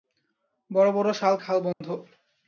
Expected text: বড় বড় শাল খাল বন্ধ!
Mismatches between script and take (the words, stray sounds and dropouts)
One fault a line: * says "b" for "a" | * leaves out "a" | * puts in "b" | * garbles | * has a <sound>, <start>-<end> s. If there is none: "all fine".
* has a dropout, 1.7-1.8 s